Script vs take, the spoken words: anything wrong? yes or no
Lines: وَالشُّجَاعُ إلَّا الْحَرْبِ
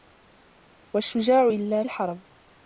no